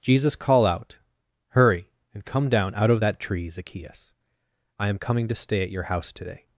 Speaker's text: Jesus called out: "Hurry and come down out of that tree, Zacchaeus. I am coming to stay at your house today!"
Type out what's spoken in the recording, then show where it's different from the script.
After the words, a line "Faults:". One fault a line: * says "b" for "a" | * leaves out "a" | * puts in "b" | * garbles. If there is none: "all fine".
Jesus call out: "Hurry and come down out of that tree, Zacchaeus. I am coming to stay at your house today!"
Faults:
* says "call" for "called"